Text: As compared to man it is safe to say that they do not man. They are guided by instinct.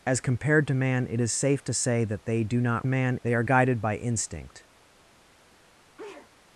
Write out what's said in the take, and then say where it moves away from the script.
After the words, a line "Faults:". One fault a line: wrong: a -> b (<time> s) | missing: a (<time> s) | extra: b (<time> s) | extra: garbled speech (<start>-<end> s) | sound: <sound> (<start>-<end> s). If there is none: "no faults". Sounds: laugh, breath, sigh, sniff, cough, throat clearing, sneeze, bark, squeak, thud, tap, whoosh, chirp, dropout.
As compared to man it is safe to say that they do not man. They are guided by instinct.
Faults:
sound: sneeze (6.0-6.3 s)